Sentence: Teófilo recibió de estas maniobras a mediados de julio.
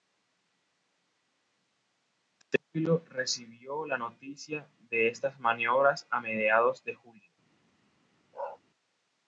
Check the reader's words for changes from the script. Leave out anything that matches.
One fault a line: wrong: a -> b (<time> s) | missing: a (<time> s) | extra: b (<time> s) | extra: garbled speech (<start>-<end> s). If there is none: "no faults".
extra: la noticia (3.9 s)